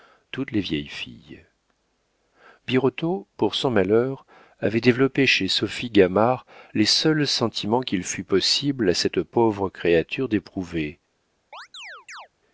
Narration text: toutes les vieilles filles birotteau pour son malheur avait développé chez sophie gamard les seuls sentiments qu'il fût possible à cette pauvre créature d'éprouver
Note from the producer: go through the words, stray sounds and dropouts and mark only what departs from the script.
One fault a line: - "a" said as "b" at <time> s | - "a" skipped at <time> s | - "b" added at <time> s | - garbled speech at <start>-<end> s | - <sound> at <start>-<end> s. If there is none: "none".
- chirp at 11.5-12.3 s